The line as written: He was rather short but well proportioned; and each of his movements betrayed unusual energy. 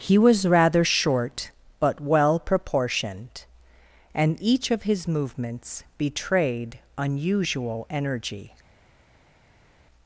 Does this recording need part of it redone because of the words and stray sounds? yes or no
no